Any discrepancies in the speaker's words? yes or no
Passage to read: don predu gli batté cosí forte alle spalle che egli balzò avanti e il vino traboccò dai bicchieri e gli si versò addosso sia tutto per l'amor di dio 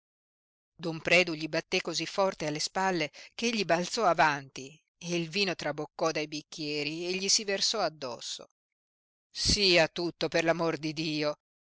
no